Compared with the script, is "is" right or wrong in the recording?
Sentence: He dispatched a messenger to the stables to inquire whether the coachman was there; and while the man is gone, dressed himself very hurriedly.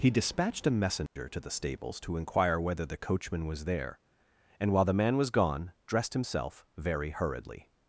wrong